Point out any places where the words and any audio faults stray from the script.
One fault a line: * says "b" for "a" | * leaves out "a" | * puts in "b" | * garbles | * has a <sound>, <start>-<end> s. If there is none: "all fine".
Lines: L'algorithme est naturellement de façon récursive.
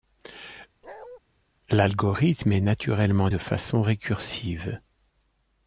* has a bark, 0.8-1.2 s